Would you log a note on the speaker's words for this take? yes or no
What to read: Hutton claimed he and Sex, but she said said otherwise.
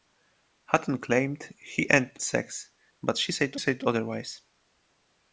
no